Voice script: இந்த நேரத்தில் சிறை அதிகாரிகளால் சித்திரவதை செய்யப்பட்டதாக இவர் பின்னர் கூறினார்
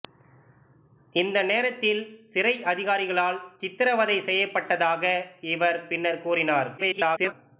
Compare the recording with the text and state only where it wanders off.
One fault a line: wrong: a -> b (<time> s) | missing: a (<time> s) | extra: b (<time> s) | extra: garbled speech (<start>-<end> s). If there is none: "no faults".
extra: garbled speech (6.8-7.3 s)